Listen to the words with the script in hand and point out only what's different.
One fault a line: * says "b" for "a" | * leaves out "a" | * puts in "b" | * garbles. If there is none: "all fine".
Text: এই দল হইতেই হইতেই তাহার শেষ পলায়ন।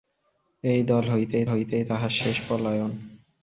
all fine